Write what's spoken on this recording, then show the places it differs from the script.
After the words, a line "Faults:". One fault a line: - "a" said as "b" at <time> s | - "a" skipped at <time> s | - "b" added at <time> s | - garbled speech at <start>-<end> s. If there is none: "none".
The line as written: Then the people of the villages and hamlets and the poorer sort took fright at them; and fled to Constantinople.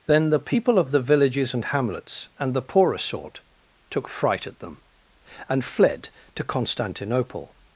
Then the people of the villages and hamlets and the poorer sort took fright at them; and fled to Constantinople.
Faults:
none